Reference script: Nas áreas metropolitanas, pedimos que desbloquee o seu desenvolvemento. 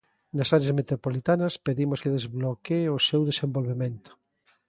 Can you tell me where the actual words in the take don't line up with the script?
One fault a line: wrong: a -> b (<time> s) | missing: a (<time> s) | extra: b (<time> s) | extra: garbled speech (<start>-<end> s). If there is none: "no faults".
no faults